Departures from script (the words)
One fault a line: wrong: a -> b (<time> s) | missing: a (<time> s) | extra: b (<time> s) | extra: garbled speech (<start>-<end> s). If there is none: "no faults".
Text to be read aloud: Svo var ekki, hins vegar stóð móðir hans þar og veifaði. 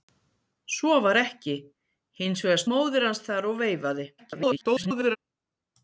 missing: stóð (2.6 s)
extra: garbled speech (4.2-5.2 s)